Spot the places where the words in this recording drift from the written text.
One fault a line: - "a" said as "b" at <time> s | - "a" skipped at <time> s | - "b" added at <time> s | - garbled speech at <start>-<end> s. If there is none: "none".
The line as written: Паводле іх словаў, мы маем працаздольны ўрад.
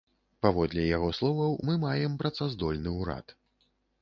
- "іх" said as "яго" at 1.0 s